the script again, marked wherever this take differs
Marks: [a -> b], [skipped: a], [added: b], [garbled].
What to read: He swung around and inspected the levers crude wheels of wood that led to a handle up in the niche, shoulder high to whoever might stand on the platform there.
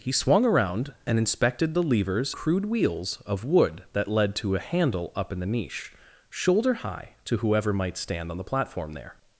He swung around and inspected the levers crude wheels of wood that led to a handle up in the niche, shoulder high to whoever might stand on the platform there.